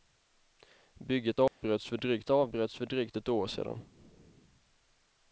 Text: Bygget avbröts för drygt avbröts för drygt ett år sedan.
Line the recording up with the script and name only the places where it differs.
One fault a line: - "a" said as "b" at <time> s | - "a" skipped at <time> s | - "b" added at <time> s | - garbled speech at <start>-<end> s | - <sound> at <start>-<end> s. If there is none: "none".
- dropout at 1.5-1.6 s